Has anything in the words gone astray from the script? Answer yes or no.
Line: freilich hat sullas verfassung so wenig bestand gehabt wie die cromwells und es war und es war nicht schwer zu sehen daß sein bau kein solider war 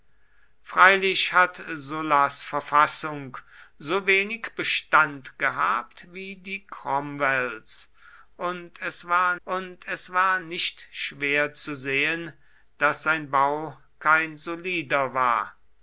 no